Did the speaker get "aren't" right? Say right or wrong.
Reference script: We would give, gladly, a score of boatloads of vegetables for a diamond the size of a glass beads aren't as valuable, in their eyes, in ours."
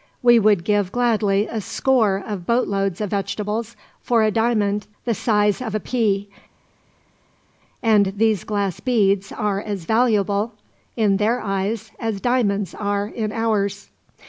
wrong